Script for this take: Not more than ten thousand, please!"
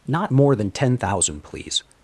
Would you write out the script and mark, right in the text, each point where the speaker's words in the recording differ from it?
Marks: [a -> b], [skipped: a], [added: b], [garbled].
Not more than ten thousand, please!"